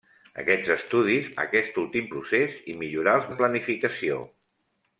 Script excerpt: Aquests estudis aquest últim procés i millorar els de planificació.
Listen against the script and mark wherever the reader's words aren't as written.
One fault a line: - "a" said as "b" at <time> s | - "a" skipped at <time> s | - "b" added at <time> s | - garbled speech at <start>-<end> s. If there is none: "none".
none